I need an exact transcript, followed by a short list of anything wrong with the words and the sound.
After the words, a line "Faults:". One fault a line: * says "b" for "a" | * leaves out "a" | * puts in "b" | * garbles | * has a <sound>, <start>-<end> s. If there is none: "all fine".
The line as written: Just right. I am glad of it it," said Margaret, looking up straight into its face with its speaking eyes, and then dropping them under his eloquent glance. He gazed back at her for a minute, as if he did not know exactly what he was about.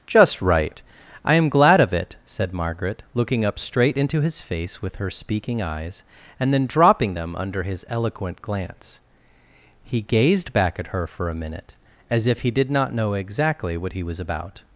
Just right. I am glad of it," said Margaret, looking up straight into his face with her speaking eyes, and then dropping them under his eloquent glance. He gazed back at her for a minute, as if he did not know exactly what he was about.
Faults:
* leaves out "it"
* says "his" for "its"
* says "her" for "its"